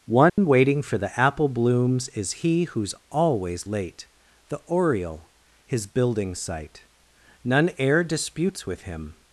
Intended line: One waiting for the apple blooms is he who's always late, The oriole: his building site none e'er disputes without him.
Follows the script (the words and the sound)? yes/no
no